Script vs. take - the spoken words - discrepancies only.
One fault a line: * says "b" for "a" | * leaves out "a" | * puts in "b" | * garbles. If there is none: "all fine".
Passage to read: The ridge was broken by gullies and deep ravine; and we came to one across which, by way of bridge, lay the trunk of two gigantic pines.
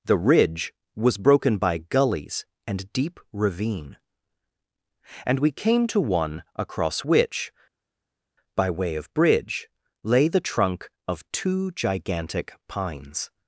all fine